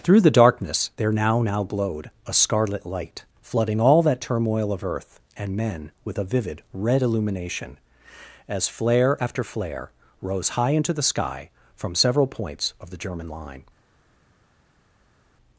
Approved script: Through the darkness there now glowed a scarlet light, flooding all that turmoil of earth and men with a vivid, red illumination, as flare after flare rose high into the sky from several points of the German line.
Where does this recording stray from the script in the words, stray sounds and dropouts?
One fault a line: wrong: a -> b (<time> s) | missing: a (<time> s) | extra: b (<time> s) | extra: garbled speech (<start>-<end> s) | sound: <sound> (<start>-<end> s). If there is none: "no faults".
extra: now (1.4 s)